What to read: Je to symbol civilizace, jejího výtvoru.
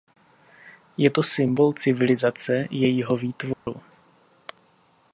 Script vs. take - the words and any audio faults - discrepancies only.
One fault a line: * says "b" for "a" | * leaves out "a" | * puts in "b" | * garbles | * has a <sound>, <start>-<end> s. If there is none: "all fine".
* has a dropout, 3.5-3.7 s